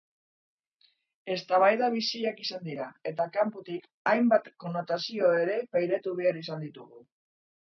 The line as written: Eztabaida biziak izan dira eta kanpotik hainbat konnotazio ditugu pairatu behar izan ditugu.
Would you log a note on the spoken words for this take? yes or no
yes